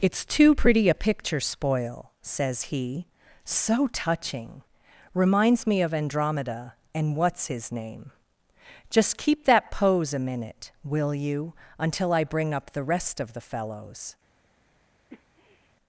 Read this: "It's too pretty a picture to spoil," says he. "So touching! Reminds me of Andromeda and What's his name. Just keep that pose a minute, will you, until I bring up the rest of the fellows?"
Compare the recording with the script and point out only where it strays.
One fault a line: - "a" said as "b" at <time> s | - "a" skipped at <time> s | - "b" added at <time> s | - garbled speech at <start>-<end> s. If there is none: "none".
- "to" skipped at 1.4 s